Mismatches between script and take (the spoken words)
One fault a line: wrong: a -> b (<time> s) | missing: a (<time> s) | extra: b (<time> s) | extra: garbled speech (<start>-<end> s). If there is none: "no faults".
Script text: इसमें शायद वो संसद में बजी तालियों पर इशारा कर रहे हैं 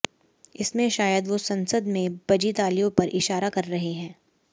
no faults